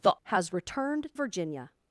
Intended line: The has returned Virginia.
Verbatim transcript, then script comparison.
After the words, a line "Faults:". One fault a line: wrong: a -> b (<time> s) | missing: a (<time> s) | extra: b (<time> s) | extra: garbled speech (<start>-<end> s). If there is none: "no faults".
The has returned Virginia.
Faults:
no faults